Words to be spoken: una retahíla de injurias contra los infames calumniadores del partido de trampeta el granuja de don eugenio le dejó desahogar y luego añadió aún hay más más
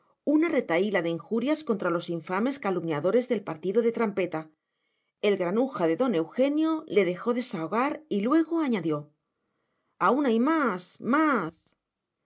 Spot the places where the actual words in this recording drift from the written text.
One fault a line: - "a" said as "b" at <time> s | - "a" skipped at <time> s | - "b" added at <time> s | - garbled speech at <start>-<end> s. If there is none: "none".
none